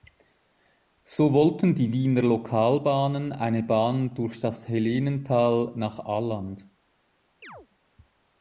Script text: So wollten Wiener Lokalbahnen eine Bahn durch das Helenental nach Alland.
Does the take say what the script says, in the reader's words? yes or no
no